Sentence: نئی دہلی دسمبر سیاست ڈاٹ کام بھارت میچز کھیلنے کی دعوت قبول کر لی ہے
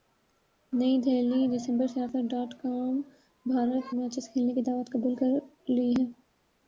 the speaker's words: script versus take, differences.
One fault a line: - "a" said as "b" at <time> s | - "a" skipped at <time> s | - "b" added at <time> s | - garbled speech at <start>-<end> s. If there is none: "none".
none